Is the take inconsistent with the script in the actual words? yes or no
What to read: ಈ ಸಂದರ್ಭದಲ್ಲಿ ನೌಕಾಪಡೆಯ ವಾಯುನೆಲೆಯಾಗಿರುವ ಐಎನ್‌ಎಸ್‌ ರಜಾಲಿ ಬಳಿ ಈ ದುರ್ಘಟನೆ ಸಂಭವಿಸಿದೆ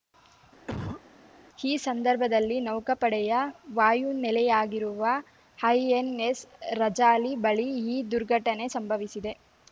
no